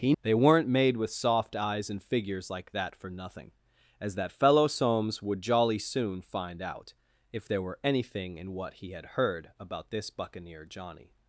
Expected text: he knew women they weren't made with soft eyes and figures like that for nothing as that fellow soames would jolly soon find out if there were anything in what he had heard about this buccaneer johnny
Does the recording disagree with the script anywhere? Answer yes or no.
yes